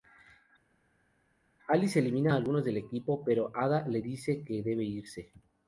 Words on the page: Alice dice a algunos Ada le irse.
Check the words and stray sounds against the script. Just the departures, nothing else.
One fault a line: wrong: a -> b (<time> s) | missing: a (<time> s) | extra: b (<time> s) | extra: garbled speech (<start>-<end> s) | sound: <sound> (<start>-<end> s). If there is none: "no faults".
wrong: dice -> elimina (2.0 s)
extra: del equipo pero (2.6 s)
extra: dice que debe (4.0 s)